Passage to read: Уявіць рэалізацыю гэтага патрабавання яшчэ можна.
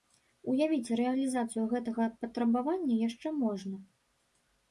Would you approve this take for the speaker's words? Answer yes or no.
yes